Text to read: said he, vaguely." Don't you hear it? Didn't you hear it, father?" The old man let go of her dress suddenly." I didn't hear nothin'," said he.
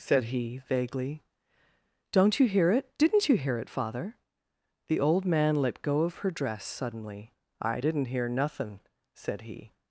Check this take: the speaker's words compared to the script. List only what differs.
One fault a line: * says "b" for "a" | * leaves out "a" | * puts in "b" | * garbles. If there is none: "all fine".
all fine